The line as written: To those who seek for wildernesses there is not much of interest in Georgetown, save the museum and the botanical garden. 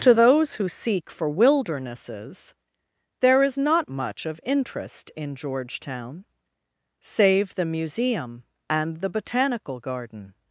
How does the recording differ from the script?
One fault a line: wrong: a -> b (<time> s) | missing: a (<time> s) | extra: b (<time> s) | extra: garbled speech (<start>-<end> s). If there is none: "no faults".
no faults